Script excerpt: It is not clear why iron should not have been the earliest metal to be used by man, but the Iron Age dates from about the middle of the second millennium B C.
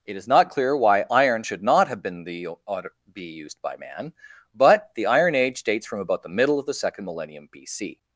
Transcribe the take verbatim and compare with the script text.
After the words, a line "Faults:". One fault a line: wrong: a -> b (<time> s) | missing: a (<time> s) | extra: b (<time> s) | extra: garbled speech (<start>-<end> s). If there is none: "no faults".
It is not clear why iron should not have been the be used by man, but the Iron Age dates from about the middle of the second millennium B C.
Faults:
missing: earliest metal to (2.5 s)